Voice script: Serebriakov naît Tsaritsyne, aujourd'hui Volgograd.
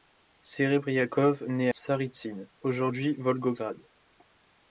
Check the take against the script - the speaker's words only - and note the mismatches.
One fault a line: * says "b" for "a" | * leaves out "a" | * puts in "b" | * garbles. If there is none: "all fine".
all fine